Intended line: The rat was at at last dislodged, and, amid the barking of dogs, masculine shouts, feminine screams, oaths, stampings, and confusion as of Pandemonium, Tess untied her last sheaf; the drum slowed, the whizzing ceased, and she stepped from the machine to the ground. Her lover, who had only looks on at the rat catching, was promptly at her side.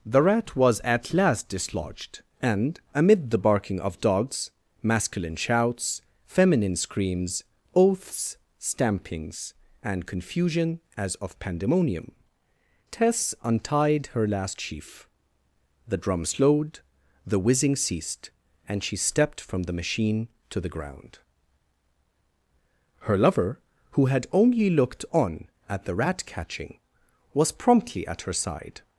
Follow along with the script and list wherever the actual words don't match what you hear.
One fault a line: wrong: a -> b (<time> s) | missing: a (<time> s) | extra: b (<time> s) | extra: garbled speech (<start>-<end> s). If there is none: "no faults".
missing: at (1.1 s)
wrong: looks -> looked (24.7 s)